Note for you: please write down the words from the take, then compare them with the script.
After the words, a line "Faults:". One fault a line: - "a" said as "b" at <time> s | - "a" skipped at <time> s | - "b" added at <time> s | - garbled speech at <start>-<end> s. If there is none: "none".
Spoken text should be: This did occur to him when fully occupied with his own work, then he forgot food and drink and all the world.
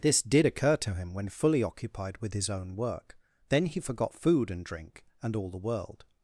This did occur to him when fully occupied with his own work, then he forgot food and drink and all the world.
Faults:
none